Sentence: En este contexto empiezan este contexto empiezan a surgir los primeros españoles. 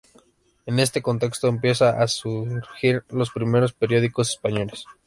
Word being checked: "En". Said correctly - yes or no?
yes